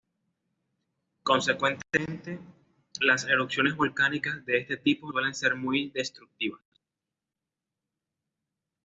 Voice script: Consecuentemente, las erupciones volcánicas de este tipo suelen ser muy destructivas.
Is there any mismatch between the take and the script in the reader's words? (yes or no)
no